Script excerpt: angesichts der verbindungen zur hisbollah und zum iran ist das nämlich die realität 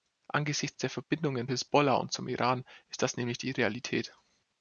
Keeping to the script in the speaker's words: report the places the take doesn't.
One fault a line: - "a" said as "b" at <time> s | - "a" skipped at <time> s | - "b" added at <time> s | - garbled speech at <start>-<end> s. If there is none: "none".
- "zur" skipped at 1.5 s